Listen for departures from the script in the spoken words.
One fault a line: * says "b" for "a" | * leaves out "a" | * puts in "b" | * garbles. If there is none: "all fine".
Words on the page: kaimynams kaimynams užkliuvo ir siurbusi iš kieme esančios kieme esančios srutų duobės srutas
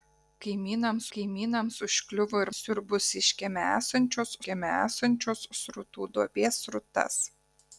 all fine